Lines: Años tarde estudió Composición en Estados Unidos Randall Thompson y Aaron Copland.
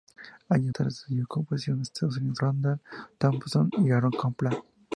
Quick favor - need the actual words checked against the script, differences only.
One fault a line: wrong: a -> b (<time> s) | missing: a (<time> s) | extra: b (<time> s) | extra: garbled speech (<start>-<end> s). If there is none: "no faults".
no faults